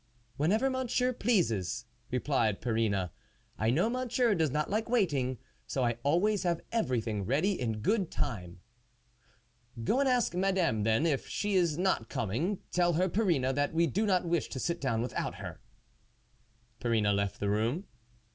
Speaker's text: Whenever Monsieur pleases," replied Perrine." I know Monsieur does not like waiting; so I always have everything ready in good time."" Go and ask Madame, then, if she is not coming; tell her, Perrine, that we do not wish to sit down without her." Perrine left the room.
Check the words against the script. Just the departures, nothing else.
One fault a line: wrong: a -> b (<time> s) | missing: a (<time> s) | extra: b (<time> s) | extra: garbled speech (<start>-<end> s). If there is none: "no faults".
no faults